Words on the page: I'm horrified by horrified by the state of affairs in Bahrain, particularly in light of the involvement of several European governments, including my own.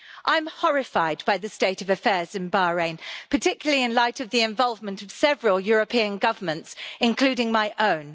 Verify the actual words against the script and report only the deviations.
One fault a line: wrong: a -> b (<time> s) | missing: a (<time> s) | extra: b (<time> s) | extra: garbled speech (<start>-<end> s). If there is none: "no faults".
missing: horrified by (1.4 s)